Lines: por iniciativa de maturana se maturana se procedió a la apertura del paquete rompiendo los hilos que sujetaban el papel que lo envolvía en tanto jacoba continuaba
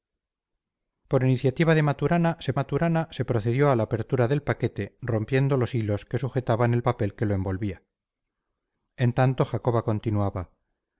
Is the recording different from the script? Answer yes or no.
no